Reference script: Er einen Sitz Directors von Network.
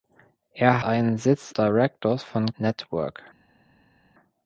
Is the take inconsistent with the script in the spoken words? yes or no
no